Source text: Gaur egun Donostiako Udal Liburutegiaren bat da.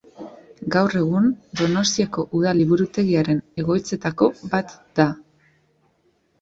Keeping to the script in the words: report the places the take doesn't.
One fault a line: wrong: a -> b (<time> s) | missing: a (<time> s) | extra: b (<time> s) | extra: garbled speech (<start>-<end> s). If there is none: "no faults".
extra: egoitzetako (3.6 s)